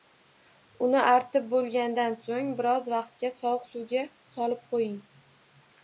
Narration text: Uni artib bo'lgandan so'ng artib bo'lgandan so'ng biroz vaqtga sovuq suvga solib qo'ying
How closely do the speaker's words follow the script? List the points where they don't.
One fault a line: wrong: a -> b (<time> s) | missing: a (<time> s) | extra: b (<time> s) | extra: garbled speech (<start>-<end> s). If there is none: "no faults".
missing: artib bo'lgandan so'ng (2.5 s)